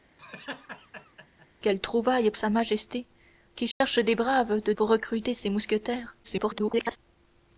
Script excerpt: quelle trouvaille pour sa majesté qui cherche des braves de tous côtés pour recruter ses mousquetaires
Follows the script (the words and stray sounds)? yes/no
no